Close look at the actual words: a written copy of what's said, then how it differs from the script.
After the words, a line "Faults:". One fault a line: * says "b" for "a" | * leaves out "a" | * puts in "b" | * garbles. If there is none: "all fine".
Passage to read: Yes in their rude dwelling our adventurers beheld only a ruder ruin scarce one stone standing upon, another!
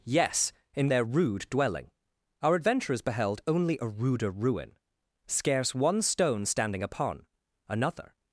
Yes in their rude dwelling our adventurers beheld only a ruder ruin scarce one stone standing upon, another!
Faults:
all fine